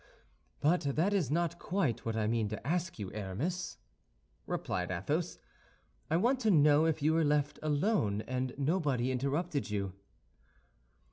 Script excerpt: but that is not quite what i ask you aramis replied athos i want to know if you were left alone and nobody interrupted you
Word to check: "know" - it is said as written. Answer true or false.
true